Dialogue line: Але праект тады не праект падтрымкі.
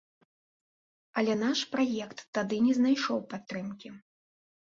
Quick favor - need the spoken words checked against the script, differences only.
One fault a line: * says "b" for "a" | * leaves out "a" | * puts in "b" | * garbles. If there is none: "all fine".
* puts in "наш"
* says "знайшоў" for "праект"